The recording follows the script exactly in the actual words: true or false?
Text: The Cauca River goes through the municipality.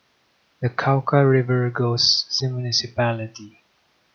false